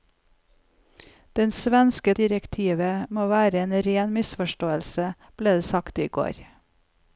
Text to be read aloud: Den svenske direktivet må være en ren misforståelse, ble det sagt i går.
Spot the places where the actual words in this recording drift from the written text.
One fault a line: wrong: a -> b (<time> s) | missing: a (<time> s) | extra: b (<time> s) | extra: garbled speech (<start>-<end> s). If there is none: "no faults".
no faults